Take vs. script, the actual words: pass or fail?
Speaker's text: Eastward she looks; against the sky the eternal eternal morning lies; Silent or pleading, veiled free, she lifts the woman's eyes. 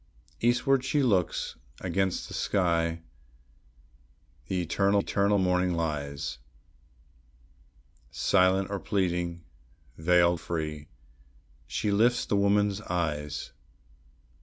pass